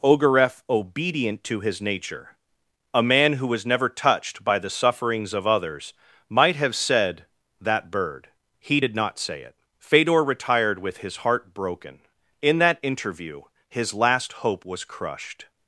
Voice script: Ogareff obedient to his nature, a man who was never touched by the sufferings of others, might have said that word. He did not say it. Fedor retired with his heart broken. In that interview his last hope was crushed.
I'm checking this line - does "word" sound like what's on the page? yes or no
no